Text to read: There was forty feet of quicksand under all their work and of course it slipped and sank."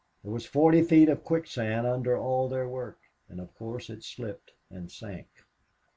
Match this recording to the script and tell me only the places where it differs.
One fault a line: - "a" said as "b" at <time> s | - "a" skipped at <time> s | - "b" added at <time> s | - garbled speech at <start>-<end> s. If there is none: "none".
none